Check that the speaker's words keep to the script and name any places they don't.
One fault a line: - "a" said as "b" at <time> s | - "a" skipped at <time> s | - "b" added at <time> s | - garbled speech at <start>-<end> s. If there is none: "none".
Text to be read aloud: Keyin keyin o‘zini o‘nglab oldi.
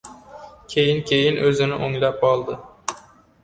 none